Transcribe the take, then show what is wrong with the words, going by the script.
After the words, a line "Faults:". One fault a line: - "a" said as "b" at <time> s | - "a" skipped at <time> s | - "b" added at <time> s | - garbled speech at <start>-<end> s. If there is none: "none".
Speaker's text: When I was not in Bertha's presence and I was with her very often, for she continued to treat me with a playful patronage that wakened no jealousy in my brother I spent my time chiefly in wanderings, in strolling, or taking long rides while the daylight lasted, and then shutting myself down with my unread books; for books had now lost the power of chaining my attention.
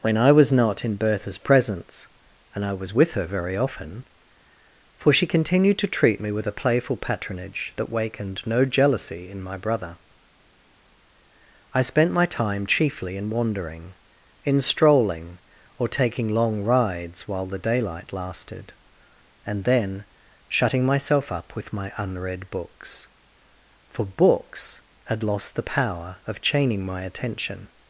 When I was not in Bertha's presence and I was with her very often, for she continued to treat me with a playful patronage that wakened no jealousy in my brother I spent my time chiefly in wandering, in strolling, or taking long rides while the daylight lasted, and then shutting myself up with my unread books; for books had lost the power of chaining my attention.
Faults:
- "wanderings" said as "wandering" at 13.3 s
- "down" said as "up" at 21.3 s
- "now" skipped at 25.2 s